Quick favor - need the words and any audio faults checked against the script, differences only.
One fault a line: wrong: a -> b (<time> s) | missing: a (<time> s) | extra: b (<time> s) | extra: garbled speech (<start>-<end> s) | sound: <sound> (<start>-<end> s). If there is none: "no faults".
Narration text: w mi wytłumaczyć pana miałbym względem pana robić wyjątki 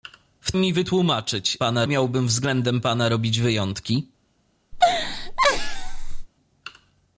sound: laugh (4.7-6.3 s)